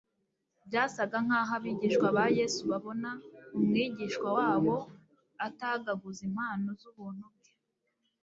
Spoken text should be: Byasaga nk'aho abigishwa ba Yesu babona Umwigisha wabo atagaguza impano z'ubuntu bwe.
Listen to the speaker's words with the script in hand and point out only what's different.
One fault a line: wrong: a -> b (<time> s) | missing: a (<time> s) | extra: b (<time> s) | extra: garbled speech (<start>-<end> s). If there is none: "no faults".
no faults